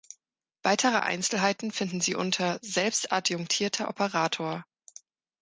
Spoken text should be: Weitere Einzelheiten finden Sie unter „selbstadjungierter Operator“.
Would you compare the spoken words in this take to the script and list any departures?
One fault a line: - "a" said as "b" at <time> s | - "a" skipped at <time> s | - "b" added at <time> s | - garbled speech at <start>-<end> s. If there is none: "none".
none